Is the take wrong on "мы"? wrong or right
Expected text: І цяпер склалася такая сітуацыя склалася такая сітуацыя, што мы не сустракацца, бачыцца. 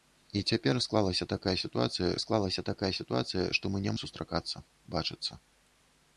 right